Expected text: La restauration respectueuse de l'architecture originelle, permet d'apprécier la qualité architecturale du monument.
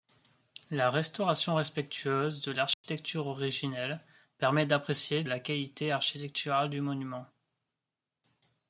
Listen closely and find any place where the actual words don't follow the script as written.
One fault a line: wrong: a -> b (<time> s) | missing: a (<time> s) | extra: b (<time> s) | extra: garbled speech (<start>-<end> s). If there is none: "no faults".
no faults